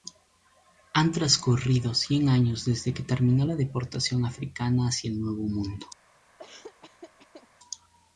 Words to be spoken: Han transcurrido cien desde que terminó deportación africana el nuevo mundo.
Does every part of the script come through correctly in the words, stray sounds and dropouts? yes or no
no